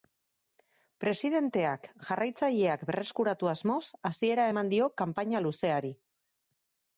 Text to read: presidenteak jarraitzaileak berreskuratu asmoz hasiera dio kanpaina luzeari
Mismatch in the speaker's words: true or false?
true